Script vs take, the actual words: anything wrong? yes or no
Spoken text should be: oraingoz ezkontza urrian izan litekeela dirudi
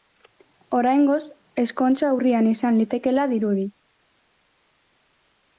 no